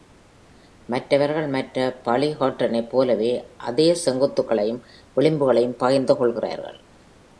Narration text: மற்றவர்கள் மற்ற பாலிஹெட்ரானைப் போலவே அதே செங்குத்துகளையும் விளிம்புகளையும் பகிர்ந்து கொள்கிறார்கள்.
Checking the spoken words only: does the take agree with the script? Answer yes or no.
yes